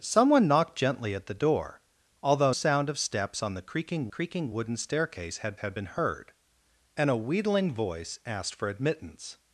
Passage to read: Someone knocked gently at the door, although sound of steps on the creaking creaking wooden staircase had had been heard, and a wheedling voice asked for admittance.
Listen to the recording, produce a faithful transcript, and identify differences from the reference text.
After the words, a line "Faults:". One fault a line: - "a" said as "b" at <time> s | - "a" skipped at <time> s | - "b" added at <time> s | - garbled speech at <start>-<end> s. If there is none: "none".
Someone knocked gently at the door, although sound of steps on the creaking creaking wooden staircase had had been heard, and a wheedling voice asked for admittance.
Faults:
none